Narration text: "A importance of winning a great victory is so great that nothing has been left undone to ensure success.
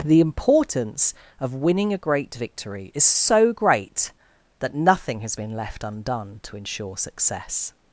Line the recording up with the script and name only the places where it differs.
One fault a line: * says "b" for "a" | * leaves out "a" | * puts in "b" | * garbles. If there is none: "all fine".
* says "The" for "A"